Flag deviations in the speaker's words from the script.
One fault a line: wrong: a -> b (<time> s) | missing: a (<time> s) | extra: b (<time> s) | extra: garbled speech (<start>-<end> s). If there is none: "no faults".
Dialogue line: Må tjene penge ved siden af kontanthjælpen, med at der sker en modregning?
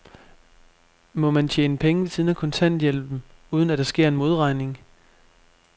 extra: man (1.3 s)
wrong: med -> uden (3.5 s)